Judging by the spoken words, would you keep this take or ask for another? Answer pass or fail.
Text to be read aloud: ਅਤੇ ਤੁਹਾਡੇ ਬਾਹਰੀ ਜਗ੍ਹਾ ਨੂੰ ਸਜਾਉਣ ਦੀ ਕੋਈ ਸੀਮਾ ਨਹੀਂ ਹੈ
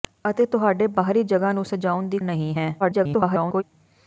fail